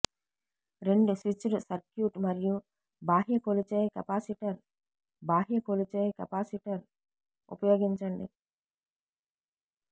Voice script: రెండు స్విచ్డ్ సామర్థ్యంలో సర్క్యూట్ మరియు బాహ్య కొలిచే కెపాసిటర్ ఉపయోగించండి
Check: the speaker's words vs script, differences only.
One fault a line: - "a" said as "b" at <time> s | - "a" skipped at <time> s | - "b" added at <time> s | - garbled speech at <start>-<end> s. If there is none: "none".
- "సామర్థ్యంలో" skipped at 1.6 s
- "బాహ్య కొలిచే కెపాసిటర్" added at 5.2 s